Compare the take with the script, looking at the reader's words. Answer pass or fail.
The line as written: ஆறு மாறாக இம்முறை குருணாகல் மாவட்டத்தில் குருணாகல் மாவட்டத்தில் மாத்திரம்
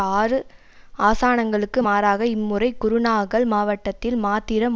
fail